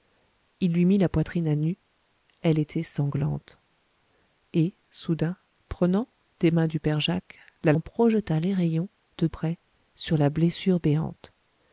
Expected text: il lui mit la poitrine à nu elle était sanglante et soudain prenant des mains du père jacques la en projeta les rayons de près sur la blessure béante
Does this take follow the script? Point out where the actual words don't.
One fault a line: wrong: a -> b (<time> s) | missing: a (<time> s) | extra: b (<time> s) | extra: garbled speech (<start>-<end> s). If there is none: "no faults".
no faults